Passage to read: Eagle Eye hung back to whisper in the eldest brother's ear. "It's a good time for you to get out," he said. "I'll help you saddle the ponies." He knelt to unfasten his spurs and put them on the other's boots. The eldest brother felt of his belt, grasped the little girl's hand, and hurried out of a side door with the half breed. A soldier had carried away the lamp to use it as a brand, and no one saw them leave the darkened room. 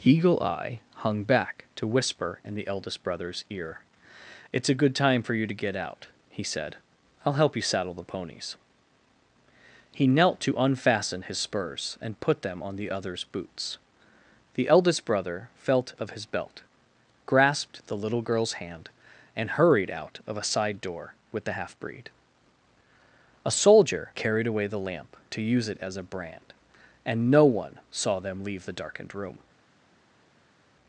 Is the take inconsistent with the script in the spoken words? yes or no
yes